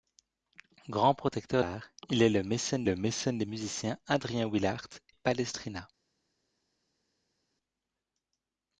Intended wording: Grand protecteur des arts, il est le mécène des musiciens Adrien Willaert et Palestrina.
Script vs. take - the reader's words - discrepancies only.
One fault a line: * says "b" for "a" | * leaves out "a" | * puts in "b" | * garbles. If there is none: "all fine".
* leaves out "des"
* puts in "le mécène"
* leaves out "et"